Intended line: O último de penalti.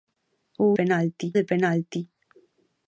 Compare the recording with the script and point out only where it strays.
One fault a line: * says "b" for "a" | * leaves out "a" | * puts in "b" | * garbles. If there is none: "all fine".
* says "penalti" for "último"